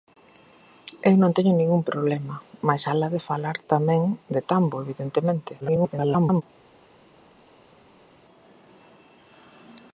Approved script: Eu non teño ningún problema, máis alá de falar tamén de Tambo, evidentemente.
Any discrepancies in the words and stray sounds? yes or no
yes